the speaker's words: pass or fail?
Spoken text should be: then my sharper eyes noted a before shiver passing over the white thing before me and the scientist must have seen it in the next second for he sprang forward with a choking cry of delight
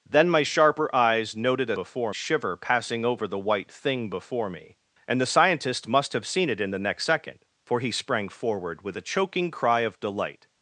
pass